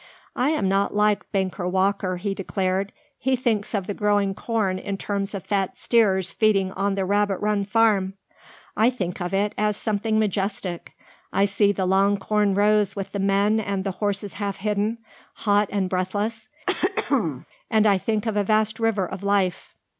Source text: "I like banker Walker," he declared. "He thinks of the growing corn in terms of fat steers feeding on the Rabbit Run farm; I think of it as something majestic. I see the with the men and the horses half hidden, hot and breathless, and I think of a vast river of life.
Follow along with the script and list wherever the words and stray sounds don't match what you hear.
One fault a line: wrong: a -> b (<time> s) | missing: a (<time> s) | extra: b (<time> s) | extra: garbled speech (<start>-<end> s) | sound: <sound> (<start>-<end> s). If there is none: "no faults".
extra: am not (0.5 s)
extra: long corn rows (11.8 s)
sound: throat clearing (16.7-17.5 s)